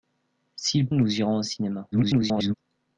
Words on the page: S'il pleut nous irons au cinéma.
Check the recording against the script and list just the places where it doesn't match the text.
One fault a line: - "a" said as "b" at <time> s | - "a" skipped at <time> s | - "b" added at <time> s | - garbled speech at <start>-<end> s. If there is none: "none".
- "pleut" skipped at 0.9 s
- garbled speech at 1.9-2.5 s